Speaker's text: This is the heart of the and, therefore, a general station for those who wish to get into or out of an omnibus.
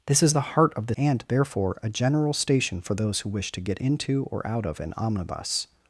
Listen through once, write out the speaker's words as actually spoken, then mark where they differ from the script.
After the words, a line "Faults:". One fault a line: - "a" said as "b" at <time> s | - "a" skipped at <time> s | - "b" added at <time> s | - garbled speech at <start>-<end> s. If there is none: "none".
This is the heart of the and, therefore, a general station for those who wish to get into or out of an omnibus.
Faults:
none